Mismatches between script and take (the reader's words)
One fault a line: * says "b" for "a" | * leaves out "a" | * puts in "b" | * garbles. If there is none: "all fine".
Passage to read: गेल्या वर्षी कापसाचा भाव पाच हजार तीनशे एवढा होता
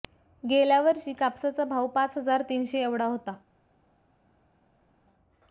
all fine